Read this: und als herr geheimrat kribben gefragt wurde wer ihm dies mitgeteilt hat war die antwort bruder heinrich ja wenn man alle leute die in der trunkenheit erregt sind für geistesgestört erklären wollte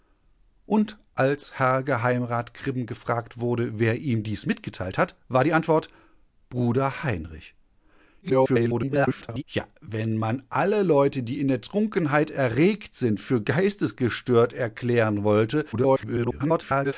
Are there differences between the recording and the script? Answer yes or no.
yes